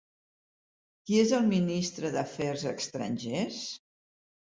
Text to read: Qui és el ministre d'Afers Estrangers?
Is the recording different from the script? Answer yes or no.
no